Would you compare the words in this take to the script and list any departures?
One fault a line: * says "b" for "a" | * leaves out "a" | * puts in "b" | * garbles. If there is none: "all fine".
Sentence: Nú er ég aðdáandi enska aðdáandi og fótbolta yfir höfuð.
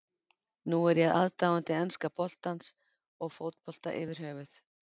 * says "boltans" for "aðdáandi"